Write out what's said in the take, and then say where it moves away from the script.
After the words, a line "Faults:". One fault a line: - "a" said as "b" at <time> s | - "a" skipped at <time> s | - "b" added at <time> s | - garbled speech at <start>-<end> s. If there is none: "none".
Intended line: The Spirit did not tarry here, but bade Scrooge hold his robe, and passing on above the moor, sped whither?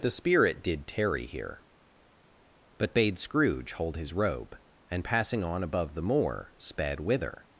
The Spirit did tarry here, but bade Scrooge hold his robe, and passing on above the moor, sped whither?
Faults:
- "not" skipped at 0.9 s